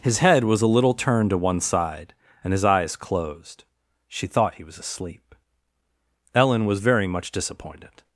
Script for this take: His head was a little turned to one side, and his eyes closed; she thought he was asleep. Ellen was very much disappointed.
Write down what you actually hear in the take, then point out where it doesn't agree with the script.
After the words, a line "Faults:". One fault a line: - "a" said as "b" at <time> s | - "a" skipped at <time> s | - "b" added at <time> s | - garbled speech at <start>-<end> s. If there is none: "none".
His head was a little turned to one side, and his eyes closed; she thought he was asleep. Ellen was very much disappointed.
Faults:
none